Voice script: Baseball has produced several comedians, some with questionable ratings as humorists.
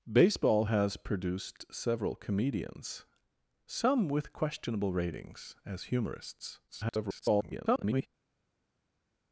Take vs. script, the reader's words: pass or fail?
fail